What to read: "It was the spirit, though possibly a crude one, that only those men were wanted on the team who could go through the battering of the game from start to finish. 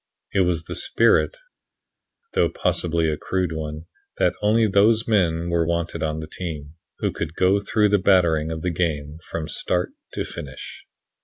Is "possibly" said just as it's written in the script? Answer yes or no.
yes